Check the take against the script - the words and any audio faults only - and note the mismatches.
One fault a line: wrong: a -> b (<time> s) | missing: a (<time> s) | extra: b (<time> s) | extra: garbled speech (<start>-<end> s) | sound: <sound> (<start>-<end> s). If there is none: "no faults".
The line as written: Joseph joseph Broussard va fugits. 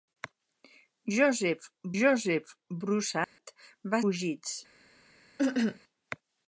sound: dropout (3.2-3.4 s)
sound: cough (5.4-5.8 s)